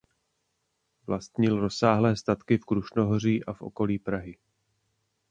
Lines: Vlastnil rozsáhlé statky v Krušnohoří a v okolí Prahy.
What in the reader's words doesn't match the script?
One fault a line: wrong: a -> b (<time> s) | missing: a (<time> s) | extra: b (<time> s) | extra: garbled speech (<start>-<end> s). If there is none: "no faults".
no faults